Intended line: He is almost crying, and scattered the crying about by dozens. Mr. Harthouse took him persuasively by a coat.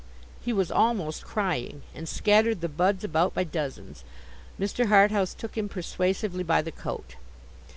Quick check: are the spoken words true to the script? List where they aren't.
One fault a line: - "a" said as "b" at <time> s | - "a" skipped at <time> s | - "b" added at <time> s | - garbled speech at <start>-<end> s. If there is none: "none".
- "is" said as "was" at 0.5 s
- "crying" said as "buds" at 2.7 s
- "a" said as "the" at 6.6 s